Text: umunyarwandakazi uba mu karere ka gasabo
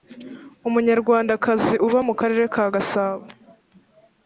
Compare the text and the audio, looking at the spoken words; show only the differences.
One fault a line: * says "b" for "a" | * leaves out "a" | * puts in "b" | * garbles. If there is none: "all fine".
all fine